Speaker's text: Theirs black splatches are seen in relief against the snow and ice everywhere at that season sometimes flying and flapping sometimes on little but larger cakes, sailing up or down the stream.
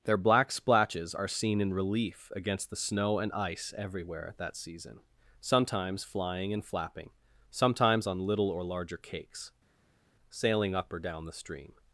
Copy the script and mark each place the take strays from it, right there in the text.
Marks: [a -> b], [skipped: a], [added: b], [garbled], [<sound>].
[Theirs -> Their] black splatches are seen in relief against the snow and ice everywhere at that season sometimes flying and flapping sometimes on little [but -> or] larger cakes, sailing up or down the stream.